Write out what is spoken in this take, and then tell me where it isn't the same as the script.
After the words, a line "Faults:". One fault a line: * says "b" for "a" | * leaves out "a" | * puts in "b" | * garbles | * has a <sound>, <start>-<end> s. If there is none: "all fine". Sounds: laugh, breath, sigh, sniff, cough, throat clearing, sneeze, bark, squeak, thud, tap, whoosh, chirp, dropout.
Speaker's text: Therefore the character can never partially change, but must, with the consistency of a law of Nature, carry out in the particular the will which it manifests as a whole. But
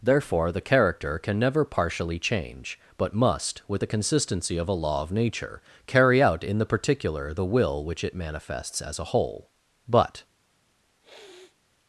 Therefore the character can never partially change, but must, with the consistency of a law of Nature, carry out in the particular the will which it manifests as a whole. But
Faults:
* has a sniff, 11.0-11.6 s